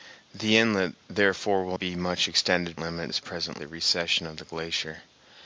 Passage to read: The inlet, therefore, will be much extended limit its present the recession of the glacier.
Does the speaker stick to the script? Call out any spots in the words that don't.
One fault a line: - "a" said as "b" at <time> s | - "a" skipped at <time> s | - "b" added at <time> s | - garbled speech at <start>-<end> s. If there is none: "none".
none